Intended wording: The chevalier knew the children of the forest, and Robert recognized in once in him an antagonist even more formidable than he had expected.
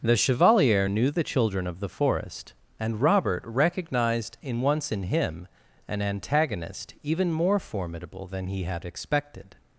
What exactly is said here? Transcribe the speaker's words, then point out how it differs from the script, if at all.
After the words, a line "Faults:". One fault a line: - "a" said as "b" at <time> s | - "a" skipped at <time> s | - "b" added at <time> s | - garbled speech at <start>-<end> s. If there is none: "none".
The chevalier knew the children of the forest, and Robert recognized in once in him an antagonist even more formidable than he had expected.
Faults:
none